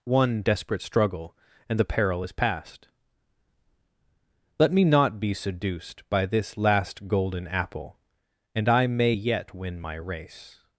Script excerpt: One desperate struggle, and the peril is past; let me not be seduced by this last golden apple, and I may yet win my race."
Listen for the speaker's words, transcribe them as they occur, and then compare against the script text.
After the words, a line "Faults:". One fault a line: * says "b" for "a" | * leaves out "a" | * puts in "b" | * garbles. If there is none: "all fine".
One desperate struggle, and the peril is past; let me not be seduced by this last golden apple, and I may yet win my race."
Faults:
all fine